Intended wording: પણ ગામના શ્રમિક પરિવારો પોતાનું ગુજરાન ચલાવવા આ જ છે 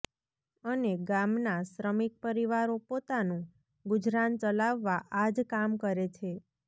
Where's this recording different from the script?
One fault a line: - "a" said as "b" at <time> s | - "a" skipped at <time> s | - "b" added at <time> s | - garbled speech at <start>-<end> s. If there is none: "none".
- "પણ" said as "અને" at 0.6 s
- "કામ કરે" added at 5.5 s